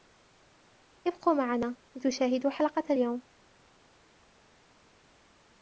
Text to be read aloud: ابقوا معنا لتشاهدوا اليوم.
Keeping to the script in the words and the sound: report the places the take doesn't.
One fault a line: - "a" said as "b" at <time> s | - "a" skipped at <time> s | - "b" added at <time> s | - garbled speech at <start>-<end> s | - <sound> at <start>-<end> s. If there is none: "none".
- "حلقة" added at 2.5 s